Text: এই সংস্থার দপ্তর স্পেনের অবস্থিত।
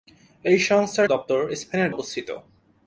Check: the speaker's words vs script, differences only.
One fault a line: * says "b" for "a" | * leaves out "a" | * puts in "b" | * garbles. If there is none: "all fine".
all fine